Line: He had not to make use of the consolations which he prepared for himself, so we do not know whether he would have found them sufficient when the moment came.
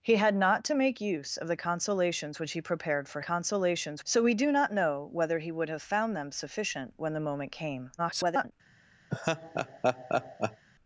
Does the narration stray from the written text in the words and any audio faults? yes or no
yes